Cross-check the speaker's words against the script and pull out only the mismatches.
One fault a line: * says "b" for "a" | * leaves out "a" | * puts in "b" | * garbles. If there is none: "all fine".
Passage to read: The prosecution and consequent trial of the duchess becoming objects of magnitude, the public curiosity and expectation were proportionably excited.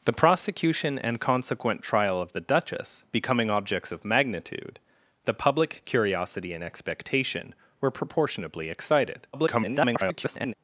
* garbles